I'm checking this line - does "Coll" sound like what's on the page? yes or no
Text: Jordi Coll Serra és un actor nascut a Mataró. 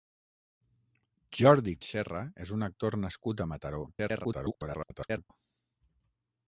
no